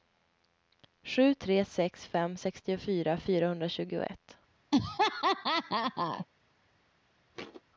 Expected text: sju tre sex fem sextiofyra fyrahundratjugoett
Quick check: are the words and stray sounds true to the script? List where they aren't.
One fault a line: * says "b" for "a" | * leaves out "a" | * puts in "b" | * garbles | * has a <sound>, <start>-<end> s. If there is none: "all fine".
* has a laugh, 4.7-6.3 s
* has a thud, 7.3-7.6 s